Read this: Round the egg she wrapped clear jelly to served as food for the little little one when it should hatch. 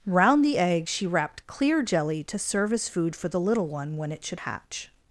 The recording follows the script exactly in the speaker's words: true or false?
false